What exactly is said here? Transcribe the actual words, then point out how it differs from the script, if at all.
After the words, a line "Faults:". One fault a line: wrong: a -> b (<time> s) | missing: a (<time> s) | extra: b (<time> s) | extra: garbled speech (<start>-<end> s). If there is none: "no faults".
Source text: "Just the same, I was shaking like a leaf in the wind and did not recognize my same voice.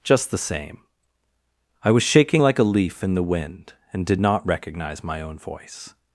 "Just the same, I was shaking like a leaf in the wind and did not recognize my own voice.
Faults:
wrong: same -> own (5.2 s)